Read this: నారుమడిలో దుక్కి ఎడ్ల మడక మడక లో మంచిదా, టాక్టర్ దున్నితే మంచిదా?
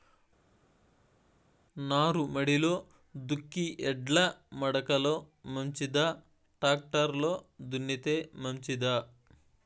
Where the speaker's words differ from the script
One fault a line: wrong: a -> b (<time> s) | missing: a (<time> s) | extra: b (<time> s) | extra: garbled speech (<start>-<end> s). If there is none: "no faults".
missing: మడక (4.9 s)
extra: లో (7.2 s)